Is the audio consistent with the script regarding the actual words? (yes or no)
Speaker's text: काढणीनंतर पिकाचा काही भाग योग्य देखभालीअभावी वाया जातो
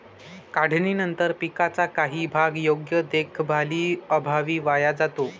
yes